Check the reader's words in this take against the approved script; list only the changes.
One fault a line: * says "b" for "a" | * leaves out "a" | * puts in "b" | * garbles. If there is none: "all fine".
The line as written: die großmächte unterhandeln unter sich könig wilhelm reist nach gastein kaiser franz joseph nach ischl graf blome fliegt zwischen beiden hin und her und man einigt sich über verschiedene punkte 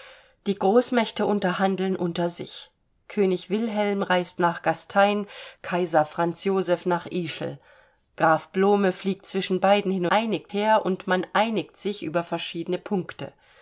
* says "einigt" for "und"